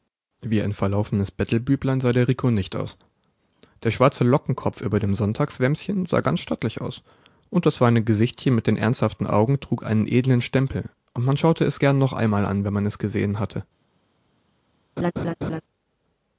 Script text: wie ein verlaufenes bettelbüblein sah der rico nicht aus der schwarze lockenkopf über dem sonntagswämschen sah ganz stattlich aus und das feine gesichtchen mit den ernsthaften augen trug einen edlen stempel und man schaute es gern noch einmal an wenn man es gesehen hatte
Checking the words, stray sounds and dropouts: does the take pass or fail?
fail